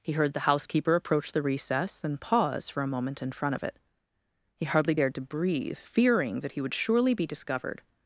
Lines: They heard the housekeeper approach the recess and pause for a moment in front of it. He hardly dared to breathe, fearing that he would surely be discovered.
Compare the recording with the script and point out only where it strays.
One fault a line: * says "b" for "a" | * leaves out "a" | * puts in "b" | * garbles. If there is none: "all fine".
* says "He" for "They"